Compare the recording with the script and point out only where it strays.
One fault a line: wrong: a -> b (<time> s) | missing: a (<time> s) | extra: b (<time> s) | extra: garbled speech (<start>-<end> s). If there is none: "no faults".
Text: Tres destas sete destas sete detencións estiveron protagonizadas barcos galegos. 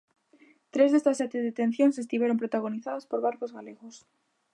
missing: destas sete (1.4 s)
extra: por (3.1 s)